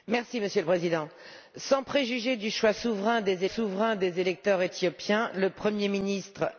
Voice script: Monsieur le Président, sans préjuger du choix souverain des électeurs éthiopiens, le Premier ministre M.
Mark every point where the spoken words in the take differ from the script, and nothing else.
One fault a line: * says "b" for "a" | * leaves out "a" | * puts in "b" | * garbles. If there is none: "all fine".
* puts in "souverain des"